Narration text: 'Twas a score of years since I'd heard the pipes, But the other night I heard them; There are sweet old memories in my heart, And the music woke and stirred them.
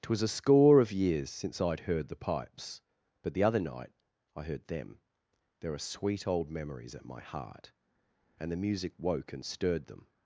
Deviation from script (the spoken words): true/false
true